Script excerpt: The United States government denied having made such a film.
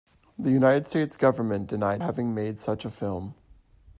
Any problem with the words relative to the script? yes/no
no